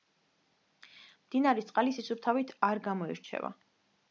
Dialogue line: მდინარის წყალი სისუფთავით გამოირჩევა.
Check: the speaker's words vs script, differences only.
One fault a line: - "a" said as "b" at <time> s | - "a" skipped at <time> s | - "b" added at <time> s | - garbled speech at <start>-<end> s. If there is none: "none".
- "არ" added at 2.7 s